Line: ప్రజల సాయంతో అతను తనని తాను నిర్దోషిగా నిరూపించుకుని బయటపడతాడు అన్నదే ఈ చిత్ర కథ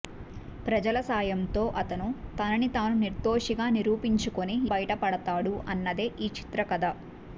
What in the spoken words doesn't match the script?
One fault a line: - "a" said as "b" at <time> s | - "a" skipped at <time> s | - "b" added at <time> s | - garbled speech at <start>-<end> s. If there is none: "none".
none